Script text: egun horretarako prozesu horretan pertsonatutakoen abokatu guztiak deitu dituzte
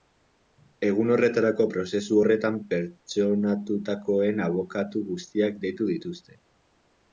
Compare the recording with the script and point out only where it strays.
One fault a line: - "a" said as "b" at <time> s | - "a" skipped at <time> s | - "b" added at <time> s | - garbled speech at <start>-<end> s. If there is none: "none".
none